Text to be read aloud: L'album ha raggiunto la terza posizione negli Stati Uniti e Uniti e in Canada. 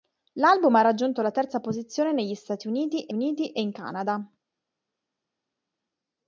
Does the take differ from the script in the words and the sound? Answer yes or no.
no